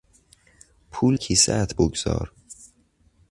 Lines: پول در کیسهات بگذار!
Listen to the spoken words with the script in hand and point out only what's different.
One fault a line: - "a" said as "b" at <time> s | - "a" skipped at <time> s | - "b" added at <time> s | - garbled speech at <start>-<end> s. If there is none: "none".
- "در" skipped at 1.2 s